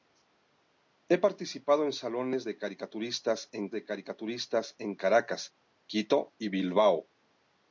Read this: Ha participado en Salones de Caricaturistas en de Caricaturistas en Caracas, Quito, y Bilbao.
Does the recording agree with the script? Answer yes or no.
yes